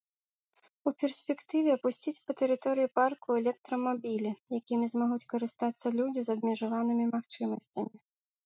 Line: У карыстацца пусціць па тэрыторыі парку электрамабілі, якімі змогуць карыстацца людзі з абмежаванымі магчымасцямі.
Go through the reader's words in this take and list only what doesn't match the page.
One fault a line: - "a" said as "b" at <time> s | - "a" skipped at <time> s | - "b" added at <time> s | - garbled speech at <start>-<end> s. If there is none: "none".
- "карыстацца" said as "перспектыве" at 1.0 s